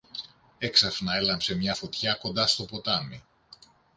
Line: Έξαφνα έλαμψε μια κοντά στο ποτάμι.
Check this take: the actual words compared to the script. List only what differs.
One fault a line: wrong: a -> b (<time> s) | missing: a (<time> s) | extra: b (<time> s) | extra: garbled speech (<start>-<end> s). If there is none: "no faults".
extra: φωτιά (1.7 s)